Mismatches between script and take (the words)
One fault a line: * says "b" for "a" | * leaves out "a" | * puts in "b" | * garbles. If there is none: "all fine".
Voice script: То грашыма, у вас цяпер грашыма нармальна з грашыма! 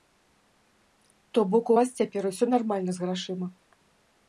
* says "бок" for "грашыма"
* says "усё" for "грашыма"